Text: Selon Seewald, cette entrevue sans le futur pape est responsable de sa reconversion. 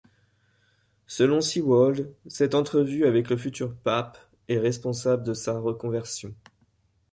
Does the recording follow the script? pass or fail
fail